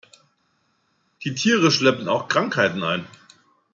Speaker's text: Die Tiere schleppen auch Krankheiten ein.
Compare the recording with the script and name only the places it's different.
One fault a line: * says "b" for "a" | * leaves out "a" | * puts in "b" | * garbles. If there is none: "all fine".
all fine